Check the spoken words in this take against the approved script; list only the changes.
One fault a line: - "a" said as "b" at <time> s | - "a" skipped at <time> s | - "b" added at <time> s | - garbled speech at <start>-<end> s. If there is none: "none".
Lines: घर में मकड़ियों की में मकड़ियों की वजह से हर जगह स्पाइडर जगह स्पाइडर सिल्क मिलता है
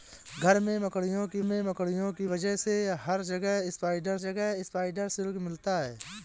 none